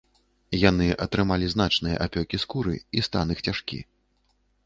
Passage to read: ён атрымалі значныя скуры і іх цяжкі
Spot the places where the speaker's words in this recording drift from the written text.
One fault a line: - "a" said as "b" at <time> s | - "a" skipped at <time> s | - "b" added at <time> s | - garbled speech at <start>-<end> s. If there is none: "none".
- "ён" said as "яны" at 0.7 s
- "апёкі" added at 2.1 s
- "стан" added at 3.1 s